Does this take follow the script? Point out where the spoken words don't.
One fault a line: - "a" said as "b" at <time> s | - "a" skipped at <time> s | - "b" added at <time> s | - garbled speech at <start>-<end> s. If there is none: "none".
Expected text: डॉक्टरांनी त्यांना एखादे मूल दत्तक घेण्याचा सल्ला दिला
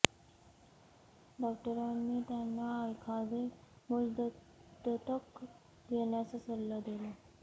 none